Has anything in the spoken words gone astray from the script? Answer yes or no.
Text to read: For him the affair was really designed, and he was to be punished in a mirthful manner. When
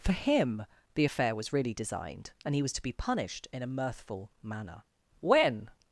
no